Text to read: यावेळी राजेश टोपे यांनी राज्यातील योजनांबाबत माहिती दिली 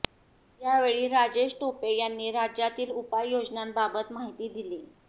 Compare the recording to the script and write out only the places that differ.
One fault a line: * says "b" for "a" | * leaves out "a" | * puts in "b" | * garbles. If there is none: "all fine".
* puts in "उपाय"